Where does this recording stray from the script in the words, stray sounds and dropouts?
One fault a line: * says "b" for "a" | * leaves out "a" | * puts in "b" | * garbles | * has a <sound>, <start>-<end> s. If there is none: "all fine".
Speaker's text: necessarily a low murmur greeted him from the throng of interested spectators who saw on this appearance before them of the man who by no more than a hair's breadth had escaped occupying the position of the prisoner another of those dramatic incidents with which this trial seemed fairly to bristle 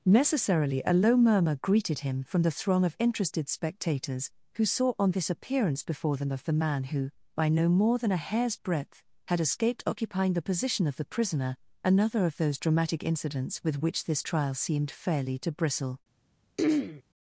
* has a throat clearing, 16.6-17.0 s